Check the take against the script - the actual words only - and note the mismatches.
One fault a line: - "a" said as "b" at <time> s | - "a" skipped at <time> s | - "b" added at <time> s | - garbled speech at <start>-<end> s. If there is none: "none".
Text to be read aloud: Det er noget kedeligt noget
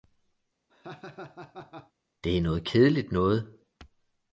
none